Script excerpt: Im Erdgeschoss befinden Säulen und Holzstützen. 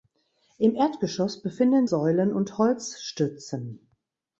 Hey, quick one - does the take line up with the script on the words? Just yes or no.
yes